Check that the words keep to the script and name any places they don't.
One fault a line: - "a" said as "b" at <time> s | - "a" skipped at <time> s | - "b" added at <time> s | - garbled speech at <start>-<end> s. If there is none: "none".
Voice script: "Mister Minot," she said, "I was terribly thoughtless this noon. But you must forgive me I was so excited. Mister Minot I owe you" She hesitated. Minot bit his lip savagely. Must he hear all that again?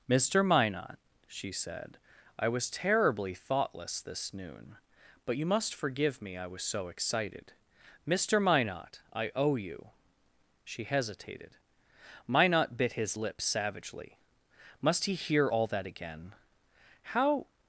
- "How" added at 17.0 s